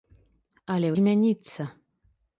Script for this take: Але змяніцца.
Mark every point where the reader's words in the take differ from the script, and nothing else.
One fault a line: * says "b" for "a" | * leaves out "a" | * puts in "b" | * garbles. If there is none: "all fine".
all fine